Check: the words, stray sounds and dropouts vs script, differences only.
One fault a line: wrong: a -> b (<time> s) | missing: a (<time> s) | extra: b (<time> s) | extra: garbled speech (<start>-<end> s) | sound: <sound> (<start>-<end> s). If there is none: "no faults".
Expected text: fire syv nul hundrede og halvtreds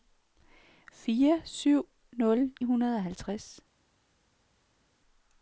no faults